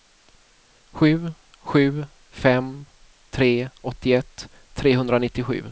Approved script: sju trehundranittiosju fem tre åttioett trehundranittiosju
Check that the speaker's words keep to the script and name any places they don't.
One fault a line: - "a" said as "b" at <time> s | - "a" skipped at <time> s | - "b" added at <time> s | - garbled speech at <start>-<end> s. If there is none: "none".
- "trehundranittiosju" said as "sju" at 1.6 s